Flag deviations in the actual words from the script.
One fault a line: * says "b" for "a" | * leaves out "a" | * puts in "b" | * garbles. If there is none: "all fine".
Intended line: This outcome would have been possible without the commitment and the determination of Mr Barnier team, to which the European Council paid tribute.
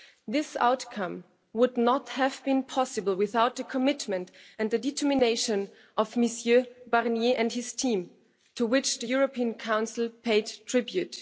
* puts in "not"
* puts in "and his"